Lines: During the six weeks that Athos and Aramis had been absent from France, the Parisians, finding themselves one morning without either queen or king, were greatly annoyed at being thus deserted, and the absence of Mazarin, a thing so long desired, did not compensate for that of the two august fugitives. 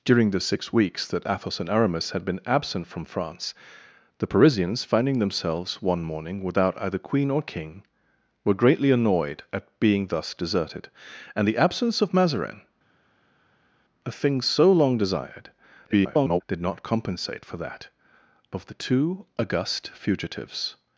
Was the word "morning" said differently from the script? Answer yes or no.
no